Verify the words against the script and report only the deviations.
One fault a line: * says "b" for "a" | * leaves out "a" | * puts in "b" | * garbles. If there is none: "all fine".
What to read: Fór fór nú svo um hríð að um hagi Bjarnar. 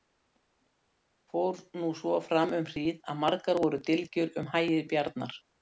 * leaves out "fór"
* puts in "fram"
* puts in "margar voru dylgjur"